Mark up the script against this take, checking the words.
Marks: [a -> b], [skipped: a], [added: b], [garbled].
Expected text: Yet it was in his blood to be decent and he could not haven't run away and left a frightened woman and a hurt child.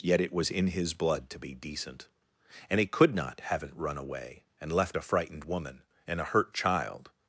Yet it was in his blood to be decent and he could not haven't run away and left a frightened woman and a hurt child.